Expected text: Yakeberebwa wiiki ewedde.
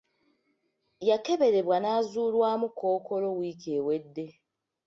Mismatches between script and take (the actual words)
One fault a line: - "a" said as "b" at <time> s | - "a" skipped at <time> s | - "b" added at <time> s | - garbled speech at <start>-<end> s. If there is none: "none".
- "n'azuulwamu Kkookolo" added at 1.8 s